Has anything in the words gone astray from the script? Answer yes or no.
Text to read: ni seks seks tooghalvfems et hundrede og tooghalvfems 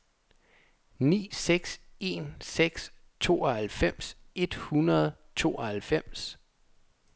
yes